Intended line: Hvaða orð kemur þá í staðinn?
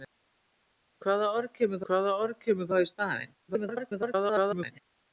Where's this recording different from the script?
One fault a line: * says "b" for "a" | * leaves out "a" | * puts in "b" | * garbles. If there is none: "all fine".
* puts in "hvaða orð kemur"
* garbles